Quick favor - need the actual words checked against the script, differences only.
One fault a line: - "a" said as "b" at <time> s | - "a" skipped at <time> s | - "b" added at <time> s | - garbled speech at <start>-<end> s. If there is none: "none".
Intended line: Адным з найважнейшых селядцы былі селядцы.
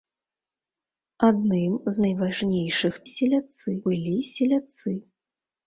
none